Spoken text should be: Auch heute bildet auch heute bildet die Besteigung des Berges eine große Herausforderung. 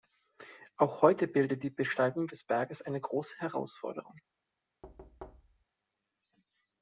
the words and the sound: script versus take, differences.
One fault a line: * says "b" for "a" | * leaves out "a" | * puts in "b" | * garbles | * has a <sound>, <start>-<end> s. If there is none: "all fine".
* leaves out "auch heute bildet"
* has a thud, 4.8-5.7 s